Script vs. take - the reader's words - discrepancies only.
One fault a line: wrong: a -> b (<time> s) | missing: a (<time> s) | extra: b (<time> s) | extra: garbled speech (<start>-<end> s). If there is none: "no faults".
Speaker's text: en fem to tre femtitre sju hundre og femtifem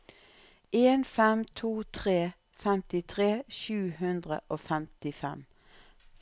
no faults